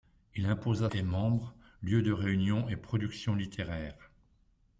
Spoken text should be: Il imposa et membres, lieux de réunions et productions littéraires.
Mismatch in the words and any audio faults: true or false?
false